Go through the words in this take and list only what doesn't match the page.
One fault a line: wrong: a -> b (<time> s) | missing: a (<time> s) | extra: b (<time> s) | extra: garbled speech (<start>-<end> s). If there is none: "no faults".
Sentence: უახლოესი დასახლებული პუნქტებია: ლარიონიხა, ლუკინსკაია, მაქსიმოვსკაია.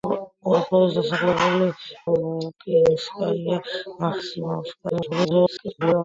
missing: პუნქტებია ლარიონიხა (1.7 s)
extra: garbled speech (4.9-6.0 s)